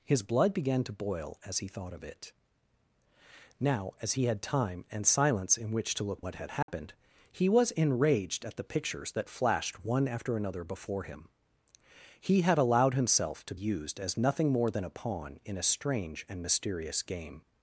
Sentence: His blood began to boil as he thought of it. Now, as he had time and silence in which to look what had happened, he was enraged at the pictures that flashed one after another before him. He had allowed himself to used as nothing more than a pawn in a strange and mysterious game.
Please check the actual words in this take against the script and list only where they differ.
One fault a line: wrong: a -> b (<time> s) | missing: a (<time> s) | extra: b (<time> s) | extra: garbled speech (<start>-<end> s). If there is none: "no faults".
no faults